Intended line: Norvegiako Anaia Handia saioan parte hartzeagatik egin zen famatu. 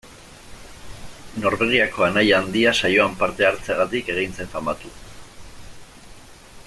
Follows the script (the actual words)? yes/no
yes